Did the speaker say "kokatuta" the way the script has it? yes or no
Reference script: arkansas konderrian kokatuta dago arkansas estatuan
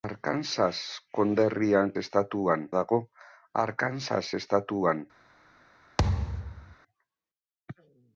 no